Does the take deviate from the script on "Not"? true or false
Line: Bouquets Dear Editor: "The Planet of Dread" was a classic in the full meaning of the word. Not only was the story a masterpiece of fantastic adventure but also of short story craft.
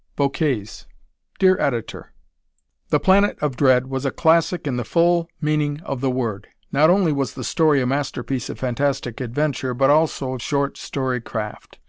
false